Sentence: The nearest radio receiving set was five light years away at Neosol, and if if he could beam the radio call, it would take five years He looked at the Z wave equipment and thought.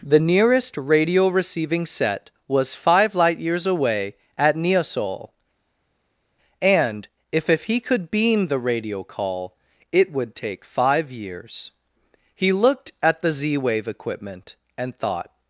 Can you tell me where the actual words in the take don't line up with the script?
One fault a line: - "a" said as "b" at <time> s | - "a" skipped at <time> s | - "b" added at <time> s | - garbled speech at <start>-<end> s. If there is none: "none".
none